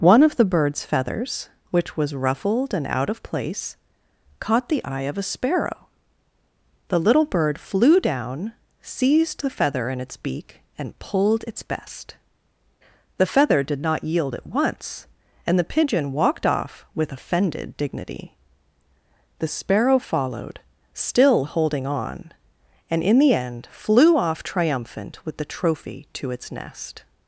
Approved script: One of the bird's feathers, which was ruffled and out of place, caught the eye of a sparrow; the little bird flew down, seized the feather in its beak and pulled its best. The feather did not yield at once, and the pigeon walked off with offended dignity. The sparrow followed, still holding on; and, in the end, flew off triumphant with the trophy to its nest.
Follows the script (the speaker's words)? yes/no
yes